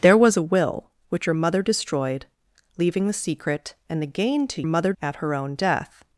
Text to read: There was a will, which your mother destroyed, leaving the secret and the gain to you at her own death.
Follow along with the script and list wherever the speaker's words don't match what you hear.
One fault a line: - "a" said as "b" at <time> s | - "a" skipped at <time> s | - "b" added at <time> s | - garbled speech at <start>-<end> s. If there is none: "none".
- "you" said as "mother" at 4.7 s